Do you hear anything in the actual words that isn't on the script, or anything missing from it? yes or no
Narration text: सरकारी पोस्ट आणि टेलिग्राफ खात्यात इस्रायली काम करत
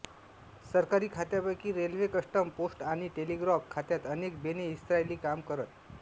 yes